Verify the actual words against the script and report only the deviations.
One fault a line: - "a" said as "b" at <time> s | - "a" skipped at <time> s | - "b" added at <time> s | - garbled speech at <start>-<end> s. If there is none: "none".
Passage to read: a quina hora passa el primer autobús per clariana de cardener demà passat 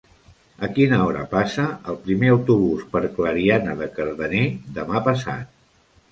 none